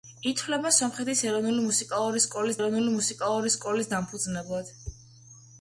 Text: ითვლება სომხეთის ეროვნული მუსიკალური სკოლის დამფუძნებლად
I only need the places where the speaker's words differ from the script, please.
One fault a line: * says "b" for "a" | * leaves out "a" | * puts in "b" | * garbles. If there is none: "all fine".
* puts in "ეროვნული მუსიკალური სკოლის"